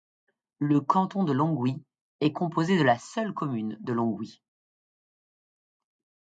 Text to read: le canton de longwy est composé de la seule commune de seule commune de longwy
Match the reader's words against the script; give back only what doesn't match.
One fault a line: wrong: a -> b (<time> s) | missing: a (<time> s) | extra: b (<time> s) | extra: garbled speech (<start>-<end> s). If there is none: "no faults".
missing: seule commune de (3.9 s)